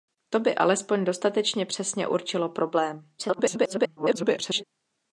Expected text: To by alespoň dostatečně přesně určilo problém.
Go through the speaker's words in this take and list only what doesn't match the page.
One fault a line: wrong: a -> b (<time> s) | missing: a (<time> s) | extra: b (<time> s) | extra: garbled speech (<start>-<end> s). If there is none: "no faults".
extra: garbled speech (3.2-4.6 s)